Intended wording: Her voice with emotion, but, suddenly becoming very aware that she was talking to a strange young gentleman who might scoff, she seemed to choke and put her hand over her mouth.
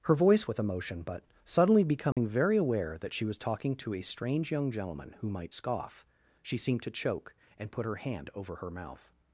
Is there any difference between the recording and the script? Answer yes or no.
no